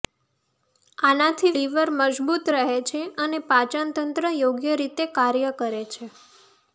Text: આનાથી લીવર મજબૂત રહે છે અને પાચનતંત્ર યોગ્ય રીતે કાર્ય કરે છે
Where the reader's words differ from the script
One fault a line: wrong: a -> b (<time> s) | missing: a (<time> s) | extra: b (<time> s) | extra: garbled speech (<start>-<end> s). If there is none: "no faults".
no faults